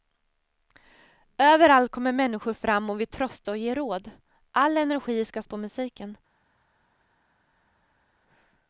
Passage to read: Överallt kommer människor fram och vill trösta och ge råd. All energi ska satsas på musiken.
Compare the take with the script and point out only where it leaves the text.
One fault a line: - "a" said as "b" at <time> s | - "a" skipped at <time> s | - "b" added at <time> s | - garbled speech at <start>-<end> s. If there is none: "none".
- "satsas" skipped at 5.4 s